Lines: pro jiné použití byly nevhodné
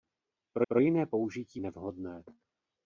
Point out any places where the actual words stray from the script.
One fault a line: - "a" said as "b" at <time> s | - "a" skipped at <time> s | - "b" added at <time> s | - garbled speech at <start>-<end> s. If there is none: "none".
- "pro" added at 0.7 s
- "byly" skipped at 1.6 s